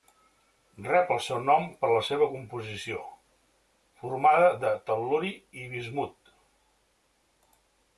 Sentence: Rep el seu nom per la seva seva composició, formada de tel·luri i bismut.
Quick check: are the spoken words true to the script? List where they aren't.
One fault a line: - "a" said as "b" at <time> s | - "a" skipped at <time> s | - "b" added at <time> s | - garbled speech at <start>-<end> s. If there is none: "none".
- "seva" skipped at 2.3 s